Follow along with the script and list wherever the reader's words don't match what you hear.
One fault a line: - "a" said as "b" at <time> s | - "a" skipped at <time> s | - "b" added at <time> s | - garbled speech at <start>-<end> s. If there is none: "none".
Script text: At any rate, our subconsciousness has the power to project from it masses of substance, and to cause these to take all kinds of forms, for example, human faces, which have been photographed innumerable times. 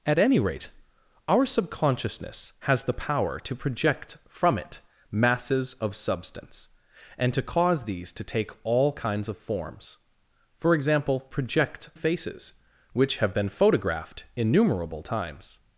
- "human" said as "project" at 11.3 s